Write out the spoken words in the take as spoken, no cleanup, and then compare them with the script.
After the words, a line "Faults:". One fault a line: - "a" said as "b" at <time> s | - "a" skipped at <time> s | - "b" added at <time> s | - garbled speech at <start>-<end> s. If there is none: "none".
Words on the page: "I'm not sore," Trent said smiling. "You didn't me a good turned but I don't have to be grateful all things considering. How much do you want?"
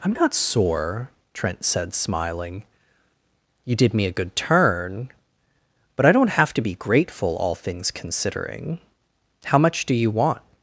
"I'm not sore," Trent said smiling. "You did me a good turn but I don't have to be grateful all things considering. How much do you want?"
Faults:
- "didn't" said as "did" at 3.7 s
- "turned" said as "turn" at 4.3 s